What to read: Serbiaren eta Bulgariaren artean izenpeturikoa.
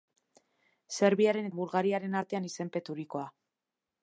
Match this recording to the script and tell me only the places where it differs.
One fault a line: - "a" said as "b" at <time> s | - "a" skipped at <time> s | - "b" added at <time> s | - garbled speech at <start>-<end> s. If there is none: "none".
- "eta" skipped at 1.5 s